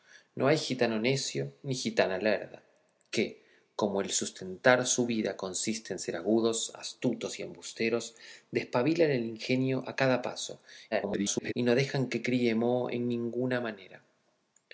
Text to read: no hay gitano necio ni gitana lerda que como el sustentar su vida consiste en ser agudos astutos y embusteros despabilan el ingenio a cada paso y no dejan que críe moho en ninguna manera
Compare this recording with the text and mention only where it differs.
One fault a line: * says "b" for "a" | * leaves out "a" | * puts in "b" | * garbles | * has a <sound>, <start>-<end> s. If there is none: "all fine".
* garbles